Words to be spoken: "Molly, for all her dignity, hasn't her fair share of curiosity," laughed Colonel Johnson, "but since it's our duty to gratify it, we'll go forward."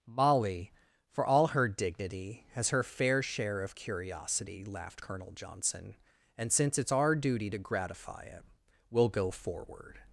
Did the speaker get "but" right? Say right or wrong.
wrong